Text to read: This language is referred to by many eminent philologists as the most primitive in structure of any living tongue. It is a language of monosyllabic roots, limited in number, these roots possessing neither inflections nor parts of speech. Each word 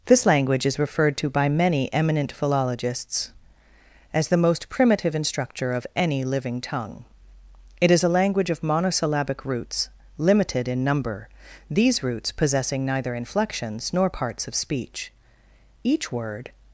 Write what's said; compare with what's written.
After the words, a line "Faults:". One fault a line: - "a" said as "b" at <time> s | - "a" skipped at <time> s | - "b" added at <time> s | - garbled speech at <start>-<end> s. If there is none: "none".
This language is referred to by many eminent philologists as the most primitive in structure of any living tongue. It is a language of monosyllabic roots, limited in number, these roots possessing neither inflections nor parts of speech. Each word
Faults:
none